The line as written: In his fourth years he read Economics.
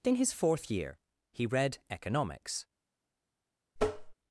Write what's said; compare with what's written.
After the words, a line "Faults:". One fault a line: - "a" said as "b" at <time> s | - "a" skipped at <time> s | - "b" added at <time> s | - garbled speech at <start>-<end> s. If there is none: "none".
In his fourth year he read Economics.
Faults:
- "years" said as "year" at 0.7 s